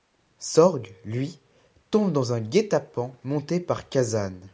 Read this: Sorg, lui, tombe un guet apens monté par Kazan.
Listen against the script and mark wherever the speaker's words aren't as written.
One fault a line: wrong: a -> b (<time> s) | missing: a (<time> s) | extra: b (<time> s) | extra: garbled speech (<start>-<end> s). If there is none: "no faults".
extra: dans (2.1 s)